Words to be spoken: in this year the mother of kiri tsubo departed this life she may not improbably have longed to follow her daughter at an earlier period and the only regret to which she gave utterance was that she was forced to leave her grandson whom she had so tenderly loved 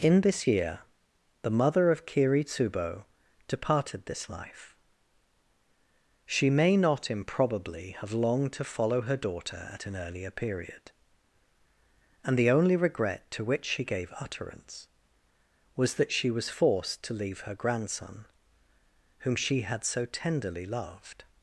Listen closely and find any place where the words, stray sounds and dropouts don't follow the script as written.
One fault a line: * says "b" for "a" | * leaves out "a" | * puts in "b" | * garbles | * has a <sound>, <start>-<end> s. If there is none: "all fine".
all fine